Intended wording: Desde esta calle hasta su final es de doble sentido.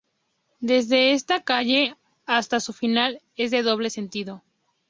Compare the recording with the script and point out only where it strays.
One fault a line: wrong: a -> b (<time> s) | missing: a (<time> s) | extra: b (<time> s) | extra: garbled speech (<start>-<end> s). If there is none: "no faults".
no faults